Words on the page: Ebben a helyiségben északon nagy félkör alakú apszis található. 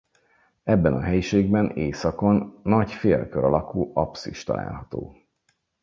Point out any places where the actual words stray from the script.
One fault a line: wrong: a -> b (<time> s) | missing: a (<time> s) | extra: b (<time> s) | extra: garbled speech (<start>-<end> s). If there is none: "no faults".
no faults